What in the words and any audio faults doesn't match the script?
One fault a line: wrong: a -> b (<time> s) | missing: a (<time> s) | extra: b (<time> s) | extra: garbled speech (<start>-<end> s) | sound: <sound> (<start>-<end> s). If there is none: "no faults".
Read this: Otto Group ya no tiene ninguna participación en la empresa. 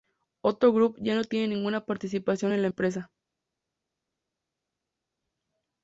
no faults